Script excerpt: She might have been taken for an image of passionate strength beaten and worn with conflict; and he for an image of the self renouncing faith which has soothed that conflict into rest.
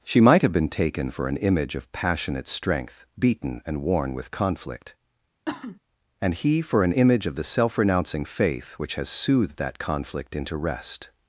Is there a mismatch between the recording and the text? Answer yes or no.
no